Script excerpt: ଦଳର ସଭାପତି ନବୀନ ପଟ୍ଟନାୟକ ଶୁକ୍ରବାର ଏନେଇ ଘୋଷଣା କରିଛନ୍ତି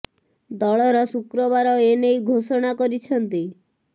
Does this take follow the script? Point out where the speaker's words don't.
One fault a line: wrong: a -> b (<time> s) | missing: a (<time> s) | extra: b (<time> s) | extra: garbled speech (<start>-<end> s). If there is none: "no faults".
missing: ସଭାପତି ନବୀନ ପଟ୍ଟନାୟକ (1.0 s)